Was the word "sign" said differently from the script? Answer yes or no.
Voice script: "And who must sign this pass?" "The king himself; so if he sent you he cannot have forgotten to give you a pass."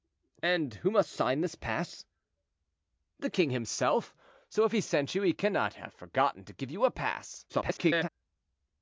no